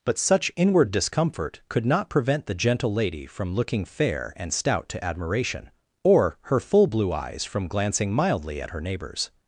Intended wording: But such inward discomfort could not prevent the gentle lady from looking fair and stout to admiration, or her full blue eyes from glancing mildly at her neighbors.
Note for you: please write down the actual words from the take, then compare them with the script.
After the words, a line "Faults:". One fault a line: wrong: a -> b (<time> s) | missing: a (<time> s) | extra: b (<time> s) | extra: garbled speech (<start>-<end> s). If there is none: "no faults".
But such inward discomfort could not prevent the gentle lady from looking fair and stout to admiration, or her full blue eyes from glancing mildly at her neighbors.
Faults:
no faults